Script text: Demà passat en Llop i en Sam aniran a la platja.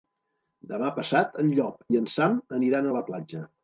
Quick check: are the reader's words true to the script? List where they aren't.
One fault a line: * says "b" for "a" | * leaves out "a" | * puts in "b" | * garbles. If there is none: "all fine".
all fine